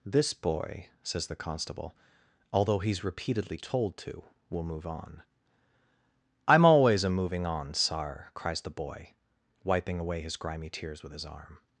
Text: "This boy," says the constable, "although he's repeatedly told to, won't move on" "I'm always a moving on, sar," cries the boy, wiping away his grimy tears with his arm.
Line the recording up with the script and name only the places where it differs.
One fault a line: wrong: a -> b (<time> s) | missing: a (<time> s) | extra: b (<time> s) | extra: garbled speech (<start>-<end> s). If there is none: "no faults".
wrong: won't -> will (4.5 s)